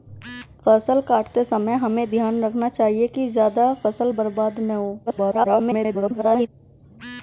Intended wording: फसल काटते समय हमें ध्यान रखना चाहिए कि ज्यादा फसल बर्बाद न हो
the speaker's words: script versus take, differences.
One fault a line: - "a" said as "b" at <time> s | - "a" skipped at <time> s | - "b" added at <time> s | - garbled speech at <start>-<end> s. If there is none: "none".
- garbled speech at 5.1-6.5 s